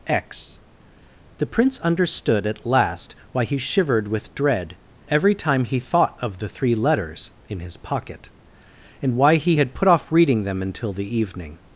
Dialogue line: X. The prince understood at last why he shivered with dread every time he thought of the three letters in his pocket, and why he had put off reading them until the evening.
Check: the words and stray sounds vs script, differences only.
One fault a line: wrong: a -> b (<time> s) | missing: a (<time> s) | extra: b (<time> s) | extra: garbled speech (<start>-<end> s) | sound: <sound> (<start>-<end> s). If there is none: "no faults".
no faults